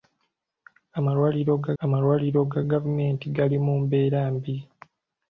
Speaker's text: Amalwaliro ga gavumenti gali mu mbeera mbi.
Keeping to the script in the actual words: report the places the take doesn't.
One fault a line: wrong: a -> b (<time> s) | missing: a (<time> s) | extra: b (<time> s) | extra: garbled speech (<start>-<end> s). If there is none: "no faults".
extra: amalwaliro ga (1.8 s)